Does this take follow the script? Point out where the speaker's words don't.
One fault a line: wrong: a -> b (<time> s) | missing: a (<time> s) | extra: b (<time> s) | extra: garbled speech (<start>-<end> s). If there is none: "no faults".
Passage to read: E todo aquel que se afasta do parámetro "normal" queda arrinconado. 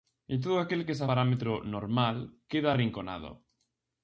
missing: afasta do (1.1 s)